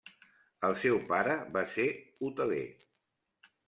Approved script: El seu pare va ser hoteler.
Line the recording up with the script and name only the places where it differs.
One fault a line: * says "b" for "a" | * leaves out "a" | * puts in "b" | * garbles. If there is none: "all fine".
all fine